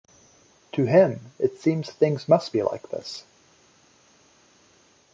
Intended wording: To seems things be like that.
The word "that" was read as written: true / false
false